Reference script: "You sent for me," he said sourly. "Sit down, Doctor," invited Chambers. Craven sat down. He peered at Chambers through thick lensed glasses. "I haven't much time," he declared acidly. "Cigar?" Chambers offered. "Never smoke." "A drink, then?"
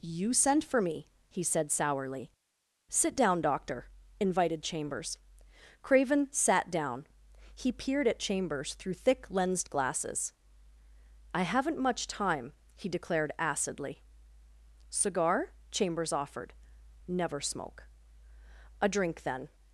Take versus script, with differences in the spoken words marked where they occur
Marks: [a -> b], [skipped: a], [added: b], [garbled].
"You sent for me," he said sourly. "Sit down, Doctor," invited Chambers. Craven sat down. He peered at Chambers through thick lensed glasses. "I haven't much time," he declared acidly. "Cigar?" Chambers offered. "Never smoke." "A drink, then?"